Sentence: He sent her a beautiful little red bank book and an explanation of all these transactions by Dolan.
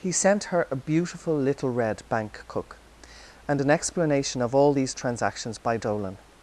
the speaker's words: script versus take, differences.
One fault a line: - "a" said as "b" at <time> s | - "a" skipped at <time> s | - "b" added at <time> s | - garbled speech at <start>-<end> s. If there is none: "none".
- "book" said as "cook" at 2.5 s